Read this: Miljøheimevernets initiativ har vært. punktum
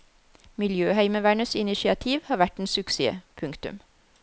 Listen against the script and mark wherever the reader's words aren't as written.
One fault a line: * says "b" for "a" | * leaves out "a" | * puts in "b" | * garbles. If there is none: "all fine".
* puts in "en suksess"